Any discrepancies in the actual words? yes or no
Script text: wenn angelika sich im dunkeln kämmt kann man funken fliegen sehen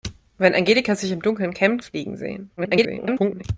yes